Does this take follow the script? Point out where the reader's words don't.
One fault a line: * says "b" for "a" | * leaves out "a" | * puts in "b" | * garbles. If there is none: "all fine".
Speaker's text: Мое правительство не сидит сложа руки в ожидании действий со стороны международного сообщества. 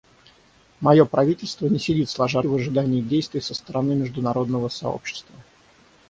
* leaves out "руки"